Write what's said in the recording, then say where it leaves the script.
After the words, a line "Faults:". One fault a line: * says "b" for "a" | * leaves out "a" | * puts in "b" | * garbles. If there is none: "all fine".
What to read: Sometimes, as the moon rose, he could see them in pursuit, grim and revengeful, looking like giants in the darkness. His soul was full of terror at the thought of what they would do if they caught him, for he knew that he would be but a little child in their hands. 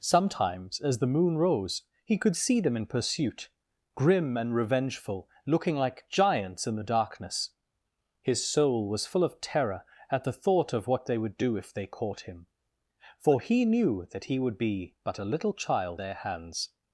Sometimes, as the moon rose, he could see them in pursuit, grim and revengeful, looking like giants in the darkness. His soul was full of terror at the thought of what they would do if they caught him, for he knew that he would be but a little child their hands.
Faults:
* leaves out "in"